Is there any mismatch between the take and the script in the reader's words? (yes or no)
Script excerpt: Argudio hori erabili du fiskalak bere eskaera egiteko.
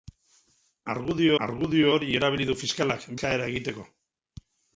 yes